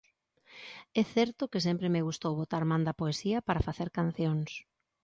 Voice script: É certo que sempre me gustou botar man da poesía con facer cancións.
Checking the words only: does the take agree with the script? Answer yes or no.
no